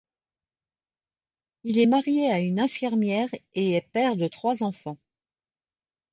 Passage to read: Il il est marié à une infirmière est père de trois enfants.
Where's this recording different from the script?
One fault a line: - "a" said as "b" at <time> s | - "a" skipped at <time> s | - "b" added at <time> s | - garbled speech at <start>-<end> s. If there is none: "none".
- "il" skipped at 1.8 s
- "et" added at 3.5 s